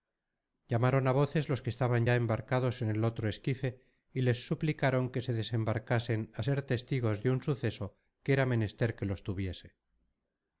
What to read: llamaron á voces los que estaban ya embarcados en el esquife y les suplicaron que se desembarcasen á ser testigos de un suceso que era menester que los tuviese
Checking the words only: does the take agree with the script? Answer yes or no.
no